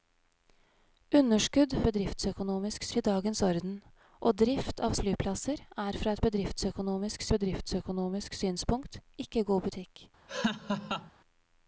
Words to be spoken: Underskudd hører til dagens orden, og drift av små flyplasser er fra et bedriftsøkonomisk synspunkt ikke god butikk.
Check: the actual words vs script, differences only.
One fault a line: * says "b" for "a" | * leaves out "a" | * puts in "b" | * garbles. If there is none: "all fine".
* says "bedriftsøkonomisk" for "hører"
* leaves out "små"
* puts in "bedriftsøkonomisk"